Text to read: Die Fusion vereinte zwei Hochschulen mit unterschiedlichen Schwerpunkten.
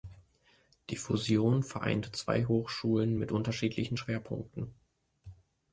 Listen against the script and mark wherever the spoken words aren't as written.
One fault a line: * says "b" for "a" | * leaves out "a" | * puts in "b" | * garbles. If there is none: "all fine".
all fine